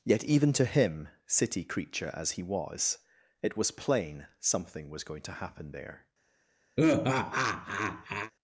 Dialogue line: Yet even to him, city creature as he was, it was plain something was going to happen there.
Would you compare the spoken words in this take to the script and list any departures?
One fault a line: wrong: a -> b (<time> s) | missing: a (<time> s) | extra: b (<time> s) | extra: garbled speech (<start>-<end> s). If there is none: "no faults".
no faults